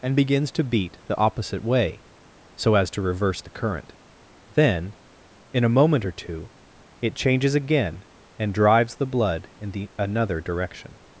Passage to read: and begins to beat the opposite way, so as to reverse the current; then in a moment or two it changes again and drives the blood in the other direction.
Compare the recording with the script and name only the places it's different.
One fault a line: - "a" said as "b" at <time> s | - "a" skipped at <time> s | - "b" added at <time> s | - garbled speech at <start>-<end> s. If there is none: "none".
- "other" said as "another" at 10.0 s